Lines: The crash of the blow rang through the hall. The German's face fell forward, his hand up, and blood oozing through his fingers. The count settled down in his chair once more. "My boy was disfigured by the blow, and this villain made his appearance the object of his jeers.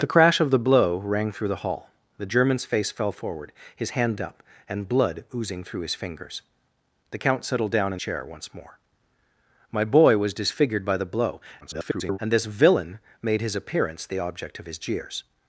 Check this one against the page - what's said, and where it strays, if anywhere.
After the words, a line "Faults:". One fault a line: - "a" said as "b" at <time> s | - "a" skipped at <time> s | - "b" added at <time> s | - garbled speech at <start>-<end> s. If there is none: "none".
The crash of the blow rang through the hall. The German's face fell forward, his hand up, and blood oozing through his fingers. The count settled down in chair once more. "My boy was disfigured by the blow, [garbled] and this villain made his appearance the object of his jeers.
Faults:
- "his" skipped at 8.0 s
- garbled speech at 11.6-12.2 s